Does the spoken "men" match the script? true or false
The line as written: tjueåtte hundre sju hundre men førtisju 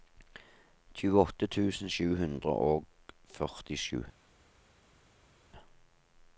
false